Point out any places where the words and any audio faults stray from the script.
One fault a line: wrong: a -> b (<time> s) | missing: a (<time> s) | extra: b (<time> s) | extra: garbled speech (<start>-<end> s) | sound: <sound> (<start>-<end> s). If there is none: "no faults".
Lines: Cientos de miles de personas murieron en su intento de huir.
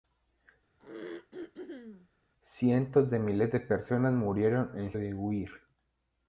sound: throat clearing (0.8-2.1 s)
missing: su intento (4.9 s)